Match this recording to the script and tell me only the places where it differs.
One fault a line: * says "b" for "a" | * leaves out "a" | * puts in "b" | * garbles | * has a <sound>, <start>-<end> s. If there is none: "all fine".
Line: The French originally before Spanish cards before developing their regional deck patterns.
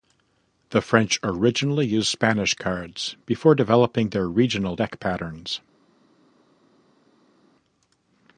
* says "used" for "before"